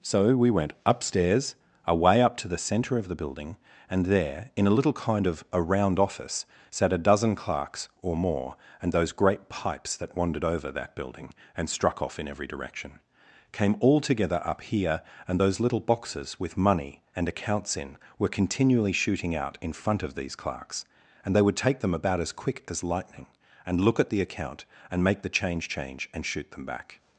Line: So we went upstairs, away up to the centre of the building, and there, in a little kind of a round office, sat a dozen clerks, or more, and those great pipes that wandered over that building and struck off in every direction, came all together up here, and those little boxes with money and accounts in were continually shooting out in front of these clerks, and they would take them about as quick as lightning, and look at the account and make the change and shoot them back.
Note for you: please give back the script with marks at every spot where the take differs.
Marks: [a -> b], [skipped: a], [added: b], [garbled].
So we went upstairs, away up to the centre of the building, and there, in a little kind of a round office, sat a dozen clerks, or more, and those great pipes that wandered over that building and struck off in every direction, came all together up here, and those little boxes with money and accounts in were continually shooting out in front of these clerks, and they would take them about as quick as lightning, and look at the account and make the change [added: change] and shoot them back.